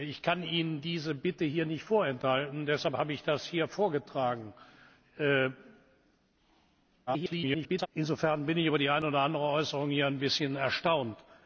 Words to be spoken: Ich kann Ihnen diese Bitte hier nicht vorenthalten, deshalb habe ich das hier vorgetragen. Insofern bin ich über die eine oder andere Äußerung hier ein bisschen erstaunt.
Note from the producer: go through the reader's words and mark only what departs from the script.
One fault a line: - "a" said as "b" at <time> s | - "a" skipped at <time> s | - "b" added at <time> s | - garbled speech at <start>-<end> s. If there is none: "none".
- garbled speech at 7.1-7.9 s